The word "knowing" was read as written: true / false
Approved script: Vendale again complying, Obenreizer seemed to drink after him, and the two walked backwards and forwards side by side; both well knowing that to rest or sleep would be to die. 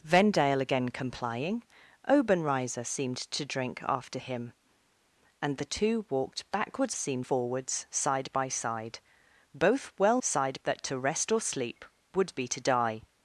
false